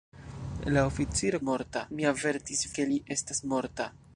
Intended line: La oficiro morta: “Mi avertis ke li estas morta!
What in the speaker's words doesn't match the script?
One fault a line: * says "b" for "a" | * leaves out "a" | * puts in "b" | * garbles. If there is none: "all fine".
all fine